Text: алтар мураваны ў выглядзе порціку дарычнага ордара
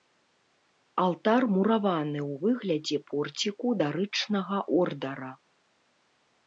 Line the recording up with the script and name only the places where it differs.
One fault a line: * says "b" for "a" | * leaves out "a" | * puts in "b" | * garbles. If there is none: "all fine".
all fine